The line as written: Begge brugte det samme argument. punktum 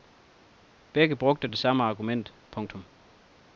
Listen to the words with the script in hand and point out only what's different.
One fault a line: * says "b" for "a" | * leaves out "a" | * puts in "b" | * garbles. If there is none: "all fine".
all fine